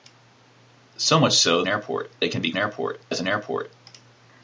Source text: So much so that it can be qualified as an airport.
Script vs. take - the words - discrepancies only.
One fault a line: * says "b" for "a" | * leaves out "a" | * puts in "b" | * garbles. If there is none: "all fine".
* says "airport" for "that"
* says "airport" for "qualified"